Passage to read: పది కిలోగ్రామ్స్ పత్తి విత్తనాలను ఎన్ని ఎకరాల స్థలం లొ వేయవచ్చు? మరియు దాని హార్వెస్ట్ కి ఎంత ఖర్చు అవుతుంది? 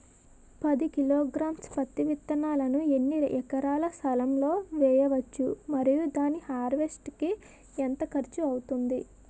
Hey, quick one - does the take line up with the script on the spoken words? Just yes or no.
yes